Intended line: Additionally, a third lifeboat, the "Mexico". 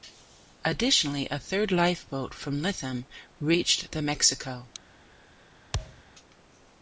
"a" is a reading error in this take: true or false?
false